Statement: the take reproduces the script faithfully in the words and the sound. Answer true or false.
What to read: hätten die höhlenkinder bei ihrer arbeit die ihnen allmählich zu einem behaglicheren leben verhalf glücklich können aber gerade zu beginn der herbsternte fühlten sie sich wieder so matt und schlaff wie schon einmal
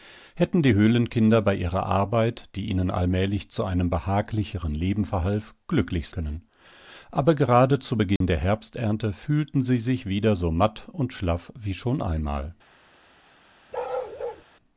false